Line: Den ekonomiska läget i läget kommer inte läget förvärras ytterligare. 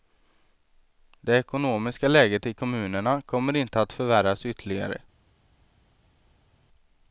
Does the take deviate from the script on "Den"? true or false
true